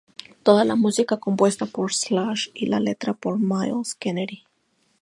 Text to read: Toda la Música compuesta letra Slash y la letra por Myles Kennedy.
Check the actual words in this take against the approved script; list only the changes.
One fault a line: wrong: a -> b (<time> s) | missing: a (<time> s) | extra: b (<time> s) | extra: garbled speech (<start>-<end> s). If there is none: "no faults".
wrong: letra -> por (1.7 s)